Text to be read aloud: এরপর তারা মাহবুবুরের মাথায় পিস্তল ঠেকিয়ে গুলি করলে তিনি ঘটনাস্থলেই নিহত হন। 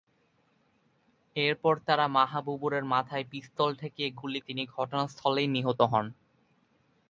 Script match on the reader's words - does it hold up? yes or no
no